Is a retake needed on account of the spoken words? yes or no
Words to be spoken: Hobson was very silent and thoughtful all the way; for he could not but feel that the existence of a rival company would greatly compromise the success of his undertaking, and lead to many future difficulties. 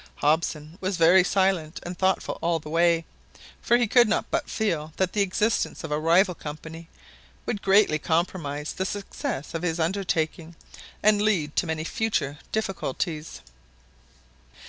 no